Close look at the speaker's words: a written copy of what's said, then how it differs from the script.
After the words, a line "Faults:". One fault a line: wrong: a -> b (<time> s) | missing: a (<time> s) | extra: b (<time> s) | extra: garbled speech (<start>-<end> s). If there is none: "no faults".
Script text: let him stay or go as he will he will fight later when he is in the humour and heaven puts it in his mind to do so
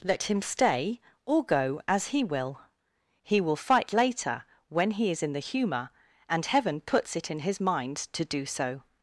let him stay or go as he will he will fight later when he is in the humour and heaven puts it in his mind to do so
Faults:
no faults